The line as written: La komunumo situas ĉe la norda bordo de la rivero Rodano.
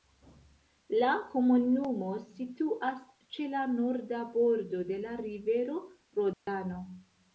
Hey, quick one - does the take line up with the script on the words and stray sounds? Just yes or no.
no